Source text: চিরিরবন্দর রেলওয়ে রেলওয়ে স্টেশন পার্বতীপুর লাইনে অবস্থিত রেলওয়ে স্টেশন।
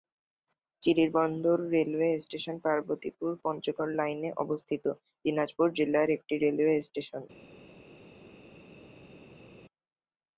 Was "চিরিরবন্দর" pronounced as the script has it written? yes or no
yes